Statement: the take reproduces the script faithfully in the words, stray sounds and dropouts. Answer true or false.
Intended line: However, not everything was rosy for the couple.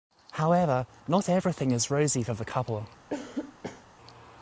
false